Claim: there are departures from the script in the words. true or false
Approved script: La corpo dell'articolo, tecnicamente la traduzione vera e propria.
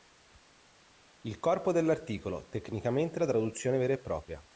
true